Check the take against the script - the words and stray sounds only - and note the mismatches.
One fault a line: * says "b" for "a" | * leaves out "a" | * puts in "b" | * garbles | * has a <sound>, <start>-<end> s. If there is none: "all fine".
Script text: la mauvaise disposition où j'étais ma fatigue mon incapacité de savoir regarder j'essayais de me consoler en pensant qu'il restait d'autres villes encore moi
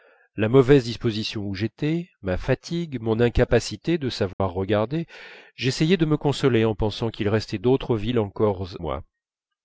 * has a dropout, 4.3-4.4 s